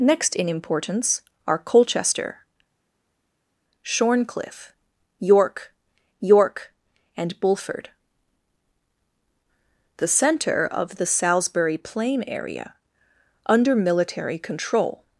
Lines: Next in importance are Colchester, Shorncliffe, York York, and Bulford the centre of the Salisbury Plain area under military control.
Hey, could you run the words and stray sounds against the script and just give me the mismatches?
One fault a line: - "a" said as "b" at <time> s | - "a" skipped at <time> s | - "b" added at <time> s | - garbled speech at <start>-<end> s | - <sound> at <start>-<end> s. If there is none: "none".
none